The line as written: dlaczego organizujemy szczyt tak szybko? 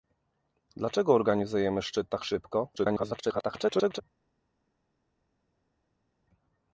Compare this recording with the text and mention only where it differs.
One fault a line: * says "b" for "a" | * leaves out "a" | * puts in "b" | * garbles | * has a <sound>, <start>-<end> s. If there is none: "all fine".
* garbles